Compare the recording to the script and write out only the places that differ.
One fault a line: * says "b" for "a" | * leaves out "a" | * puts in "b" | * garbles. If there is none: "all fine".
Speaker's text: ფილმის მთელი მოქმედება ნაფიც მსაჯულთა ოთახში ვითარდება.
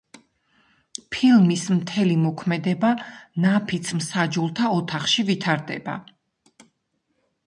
all fine